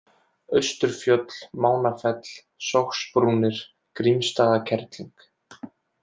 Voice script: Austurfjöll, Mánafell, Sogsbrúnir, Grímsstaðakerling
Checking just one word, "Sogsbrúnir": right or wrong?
right